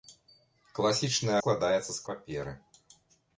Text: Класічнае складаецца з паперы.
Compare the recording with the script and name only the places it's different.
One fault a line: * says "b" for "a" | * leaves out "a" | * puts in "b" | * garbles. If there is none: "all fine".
all fine